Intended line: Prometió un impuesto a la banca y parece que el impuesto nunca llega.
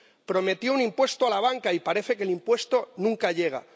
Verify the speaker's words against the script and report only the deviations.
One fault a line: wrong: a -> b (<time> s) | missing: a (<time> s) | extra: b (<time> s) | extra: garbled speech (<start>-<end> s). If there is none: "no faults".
no faults